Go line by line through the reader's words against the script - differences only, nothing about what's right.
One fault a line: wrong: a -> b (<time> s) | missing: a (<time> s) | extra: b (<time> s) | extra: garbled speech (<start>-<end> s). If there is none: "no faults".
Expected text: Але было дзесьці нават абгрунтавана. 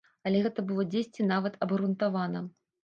extra: гэта (0.4 s)